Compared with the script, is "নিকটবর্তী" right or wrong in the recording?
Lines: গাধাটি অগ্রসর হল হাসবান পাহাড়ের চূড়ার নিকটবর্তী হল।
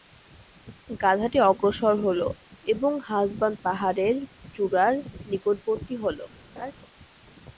right